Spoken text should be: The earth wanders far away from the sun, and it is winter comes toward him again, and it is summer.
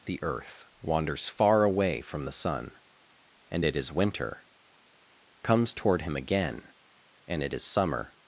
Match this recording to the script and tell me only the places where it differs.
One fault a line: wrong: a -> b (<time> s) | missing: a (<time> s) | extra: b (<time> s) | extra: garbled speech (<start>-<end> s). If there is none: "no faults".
no faults